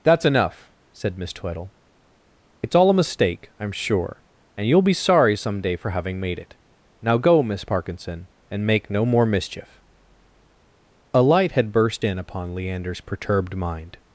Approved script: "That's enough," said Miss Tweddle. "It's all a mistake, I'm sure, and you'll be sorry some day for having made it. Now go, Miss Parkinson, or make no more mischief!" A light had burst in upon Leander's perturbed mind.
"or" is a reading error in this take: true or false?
true